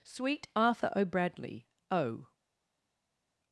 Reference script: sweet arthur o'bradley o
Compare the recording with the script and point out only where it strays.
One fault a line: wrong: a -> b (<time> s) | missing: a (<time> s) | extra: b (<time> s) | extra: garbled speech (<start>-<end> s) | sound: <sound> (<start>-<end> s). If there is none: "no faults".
no faults